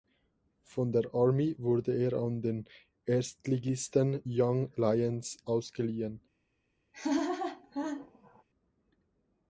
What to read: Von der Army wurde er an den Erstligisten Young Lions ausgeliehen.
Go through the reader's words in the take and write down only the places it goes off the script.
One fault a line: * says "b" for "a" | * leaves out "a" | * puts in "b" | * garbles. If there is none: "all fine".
all fine